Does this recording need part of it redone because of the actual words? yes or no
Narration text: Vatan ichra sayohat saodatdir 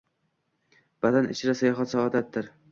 no